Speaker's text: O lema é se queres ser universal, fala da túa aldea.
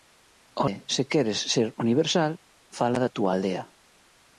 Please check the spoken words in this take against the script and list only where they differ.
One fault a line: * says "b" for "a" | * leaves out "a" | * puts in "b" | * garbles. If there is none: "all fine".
* leaves out "lema"